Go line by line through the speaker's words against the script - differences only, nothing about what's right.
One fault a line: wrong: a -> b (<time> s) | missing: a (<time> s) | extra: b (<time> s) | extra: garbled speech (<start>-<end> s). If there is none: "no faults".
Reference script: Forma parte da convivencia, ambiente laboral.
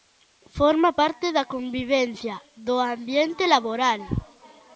extra: do (2.7 s)